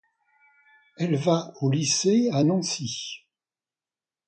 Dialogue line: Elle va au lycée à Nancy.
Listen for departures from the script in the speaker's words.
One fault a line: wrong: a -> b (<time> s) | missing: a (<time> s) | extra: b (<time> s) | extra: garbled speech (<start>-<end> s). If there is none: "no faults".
no faults